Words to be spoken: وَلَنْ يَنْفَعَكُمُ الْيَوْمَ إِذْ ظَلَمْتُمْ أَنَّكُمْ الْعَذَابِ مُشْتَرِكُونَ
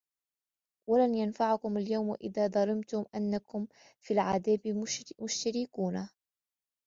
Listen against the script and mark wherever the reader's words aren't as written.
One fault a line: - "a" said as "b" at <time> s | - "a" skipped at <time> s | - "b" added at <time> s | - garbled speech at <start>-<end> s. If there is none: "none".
- "فِي" added at 4.0 s